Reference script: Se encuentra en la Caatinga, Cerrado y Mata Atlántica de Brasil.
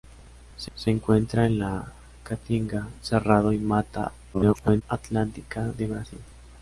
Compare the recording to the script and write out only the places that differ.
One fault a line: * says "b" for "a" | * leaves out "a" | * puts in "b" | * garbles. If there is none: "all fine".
* puts in "se"
* garbles